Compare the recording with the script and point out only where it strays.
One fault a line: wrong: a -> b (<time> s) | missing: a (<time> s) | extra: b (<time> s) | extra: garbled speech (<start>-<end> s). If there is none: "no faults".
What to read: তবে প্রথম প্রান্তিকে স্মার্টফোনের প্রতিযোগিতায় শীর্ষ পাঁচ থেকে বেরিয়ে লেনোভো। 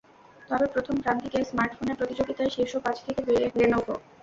no faults